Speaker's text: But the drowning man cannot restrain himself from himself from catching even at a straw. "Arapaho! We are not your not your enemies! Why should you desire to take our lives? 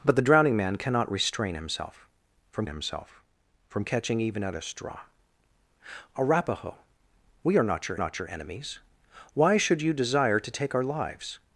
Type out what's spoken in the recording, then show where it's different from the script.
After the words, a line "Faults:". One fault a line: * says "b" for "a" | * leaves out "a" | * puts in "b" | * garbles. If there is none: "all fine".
But the drowning man cannot restrain himself from himself from catching even at a straw. "Arapaho! We are not your not your enemies! Why should you desire to take our lives?
Faults:
all fine